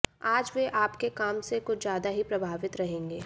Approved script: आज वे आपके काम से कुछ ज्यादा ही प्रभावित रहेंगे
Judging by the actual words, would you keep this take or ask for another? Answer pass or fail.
pass